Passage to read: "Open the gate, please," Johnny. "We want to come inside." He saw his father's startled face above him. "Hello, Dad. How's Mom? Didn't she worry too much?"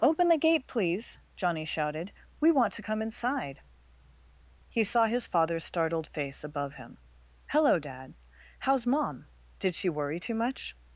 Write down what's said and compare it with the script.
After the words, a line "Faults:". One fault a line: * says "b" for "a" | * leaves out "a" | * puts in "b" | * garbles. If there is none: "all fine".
"Open the gate, please," Johnny shouted. "We want to come inside." He saw his father's startled face above him. "Hello, Dad. How's Mom? Did she worry too much?"
Faults:
* puts in "shouted"
* says "Did" for "Didn't"